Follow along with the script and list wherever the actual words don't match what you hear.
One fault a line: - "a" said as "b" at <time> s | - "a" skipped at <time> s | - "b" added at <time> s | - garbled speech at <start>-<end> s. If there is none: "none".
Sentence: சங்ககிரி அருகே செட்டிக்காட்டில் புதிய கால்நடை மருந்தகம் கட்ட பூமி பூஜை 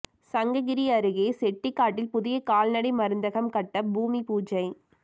none